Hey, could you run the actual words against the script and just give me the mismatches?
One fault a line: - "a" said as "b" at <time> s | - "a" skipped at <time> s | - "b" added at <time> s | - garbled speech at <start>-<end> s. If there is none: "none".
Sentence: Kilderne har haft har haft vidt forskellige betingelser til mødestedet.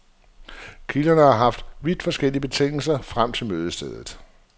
- "har haft" skipped at 1.6 s
- "frem" added at 3.0 s